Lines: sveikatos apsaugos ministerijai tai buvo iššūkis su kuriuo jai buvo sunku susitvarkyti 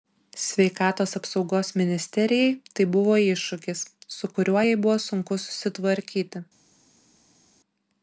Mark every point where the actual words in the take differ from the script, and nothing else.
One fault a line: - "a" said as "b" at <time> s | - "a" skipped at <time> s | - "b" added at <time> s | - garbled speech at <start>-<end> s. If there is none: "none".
none